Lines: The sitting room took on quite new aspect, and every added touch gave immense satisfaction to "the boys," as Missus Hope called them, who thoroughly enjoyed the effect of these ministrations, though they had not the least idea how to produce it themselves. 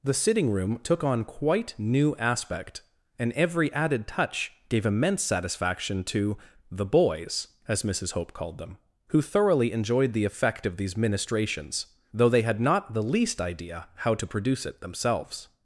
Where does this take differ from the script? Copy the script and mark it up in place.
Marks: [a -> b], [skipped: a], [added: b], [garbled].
The sitting room took on quite new aspect, and every added touch gave immense satisfaction to "the boys," as Missus Hope called them, who thoroughly enjoyed the effect of these ministrations, though they had not the least idea how to produce it themselves.